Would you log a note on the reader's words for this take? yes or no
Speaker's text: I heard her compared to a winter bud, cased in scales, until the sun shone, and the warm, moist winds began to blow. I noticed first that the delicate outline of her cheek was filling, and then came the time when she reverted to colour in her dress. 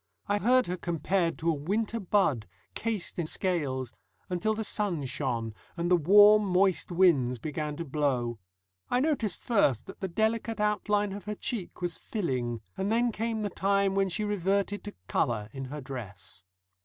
no